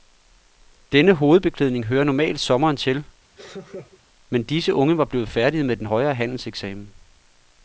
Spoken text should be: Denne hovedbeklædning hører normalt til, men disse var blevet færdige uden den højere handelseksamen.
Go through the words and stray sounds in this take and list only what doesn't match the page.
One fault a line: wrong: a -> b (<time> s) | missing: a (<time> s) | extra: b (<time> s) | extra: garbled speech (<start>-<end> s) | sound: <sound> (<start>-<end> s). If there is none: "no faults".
extra: sommeren (2.4 s)
sound: laugh (3.4-4.0 s)
extra: unge (4.7 s)
wrong: uden -> med (5.6 s)